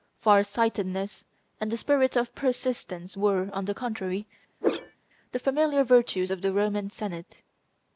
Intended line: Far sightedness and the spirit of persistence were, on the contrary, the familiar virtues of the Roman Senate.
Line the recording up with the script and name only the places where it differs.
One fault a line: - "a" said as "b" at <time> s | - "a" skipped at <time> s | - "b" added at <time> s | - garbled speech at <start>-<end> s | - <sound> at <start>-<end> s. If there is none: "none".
- whoosh at 4.6-5.0 s